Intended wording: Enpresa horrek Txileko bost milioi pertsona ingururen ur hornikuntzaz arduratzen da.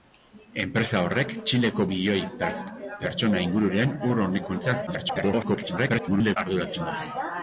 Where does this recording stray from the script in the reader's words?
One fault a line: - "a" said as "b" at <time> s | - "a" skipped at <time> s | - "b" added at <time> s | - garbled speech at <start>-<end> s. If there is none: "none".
- "bost" skipped at 1.9 s
- garbled speech at 4.9-6.4 s